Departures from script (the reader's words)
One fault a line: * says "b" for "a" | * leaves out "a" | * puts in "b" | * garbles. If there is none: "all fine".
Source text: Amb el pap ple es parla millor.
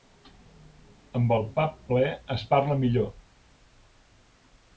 all fine